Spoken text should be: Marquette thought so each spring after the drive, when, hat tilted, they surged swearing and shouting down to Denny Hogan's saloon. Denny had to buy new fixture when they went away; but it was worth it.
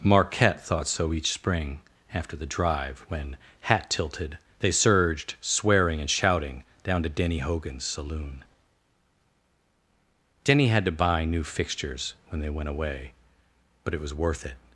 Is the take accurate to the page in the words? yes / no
no